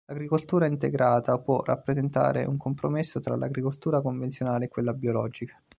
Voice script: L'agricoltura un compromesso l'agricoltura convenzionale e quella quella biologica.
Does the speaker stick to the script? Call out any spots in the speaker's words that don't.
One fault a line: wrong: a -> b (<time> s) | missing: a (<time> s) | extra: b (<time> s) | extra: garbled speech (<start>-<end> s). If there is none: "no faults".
extra: integrata può rappresentare (0.7 s)
extra: tra (3.2 s)
missing: quella (4.9 s)